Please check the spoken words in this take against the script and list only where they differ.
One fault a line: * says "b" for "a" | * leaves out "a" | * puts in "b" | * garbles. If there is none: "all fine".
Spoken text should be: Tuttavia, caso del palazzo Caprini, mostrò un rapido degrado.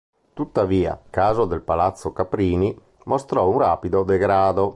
all fine